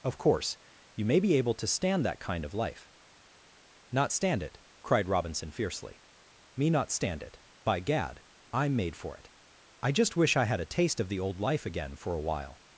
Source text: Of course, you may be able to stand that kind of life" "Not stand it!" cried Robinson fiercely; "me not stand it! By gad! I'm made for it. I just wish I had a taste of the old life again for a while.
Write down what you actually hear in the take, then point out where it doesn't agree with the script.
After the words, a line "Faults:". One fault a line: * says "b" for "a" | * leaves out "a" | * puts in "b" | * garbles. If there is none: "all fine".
Of course, you may be able to stand that kind of life" "Not stand it!" cried Robinson fiercely; "me not stand it! By gad! I'm made for it. I just wish I had a taste of the old life again for a while.
Faults:
all fine